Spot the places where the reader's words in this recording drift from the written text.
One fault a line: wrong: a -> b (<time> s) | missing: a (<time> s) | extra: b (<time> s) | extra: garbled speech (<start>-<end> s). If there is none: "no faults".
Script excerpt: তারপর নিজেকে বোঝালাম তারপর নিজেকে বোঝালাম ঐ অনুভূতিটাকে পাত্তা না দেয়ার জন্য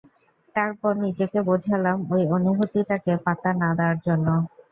missing: তারপর নিজেকে বোঝালাম (2.0 s)